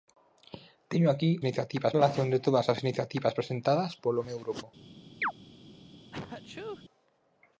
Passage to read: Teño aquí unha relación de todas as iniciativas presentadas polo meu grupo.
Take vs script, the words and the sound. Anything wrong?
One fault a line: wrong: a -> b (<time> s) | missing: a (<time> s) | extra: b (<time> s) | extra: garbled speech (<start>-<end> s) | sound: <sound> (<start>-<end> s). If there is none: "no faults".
wrong: unha -> iniciativas (1.4 s)
sound: chirp (5.2-5.3 s)
sound: sneeze (6.1-6.8 s)